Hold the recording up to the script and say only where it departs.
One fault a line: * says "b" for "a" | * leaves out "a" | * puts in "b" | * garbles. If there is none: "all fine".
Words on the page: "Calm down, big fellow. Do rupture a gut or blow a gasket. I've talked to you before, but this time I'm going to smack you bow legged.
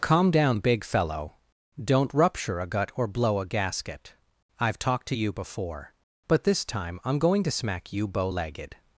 * says "Don't" for "Do"